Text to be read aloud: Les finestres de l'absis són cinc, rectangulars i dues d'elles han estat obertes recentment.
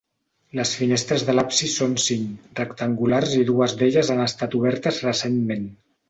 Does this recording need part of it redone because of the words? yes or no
no